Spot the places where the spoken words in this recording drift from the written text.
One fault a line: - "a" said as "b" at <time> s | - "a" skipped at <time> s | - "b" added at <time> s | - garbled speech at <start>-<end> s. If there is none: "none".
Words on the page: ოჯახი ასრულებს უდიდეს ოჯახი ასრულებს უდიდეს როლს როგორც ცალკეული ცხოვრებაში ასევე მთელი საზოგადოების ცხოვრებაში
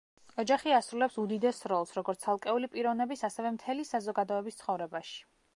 - "ოჯახი ასრულებს უდიდეს" skipped at 1.6 s
- "ცხოვრებაში" said as "პიროვნების" at 2.8 s